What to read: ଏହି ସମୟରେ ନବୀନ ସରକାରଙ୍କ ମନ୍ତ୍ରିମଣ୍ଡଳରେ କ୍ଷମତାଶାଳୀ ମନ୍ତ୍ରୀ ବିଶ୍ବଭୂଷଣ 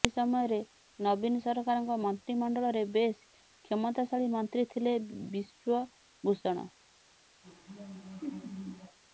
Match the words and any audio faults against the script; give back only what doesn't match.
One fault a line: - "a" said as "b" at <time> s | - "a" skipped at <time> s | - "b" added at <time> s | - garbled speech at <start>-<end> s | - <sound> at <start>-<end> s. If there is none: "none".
- "ବେଶ୍" added at 2.9 s
- "ଥିଲେ" added at 4.7 s
- laugh at 7.4-9.0 s